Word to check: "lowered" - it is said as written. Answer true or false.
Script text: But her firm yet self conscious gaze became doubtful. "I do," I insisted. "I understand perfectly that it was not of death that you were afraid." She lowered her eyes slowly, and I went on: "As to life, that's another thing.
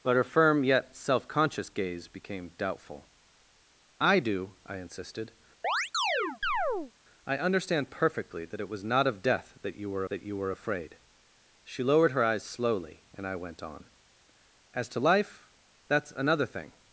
true